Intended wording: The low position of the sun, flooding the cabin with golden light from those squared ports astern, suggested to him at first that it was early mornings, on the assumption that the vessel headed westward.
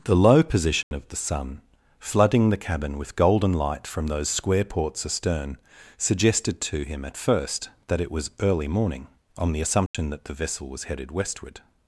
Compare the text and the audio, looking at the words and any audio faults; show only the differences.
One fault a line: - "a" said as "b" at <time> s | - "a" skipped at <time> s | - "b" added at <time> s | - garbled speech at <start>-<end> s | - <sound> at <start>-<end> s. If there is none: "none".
- dropout at 0.8-0.9 s
- "squared" said as "square" at 4.3 s
- "mornings" said as "morning" at 8.7 s
- dropout at 9.9-9.9 s
- "was" added at 10.7 s